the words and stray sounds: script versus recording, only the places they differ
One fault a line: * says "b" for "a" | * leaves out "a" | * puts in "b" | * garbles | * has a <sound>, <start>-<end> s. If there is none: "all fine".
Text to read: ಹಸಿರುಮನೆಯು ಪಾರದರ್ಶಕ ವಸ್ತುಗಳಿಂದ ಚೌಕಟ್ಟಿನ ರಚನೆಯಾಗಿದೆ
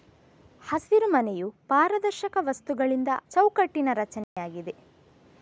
* has a dropout, 4.2-4.4 s